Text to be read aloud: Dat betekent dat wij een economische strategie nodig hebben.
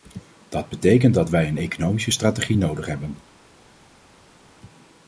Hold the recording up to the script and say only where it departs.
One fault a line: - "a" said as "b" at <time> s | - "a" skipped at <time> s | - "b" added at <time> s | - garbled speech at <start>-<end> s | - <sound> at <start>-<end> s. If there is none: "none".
none